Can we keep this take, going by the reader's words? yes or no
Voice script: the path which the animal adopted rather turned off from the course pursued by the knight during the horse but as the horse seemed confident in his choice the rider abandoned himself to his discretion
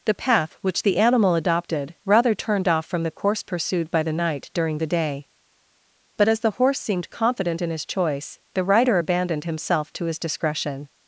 no